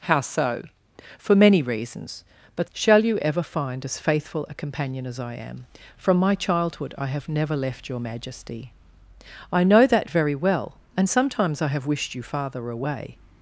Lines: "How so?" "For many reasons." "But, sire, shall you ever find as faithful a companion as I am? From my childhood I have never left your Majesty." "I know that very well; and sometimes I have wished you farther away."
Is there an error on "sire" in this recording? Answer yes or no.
yes